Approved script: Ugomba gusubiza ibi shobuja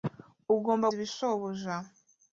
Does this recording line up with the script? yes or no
no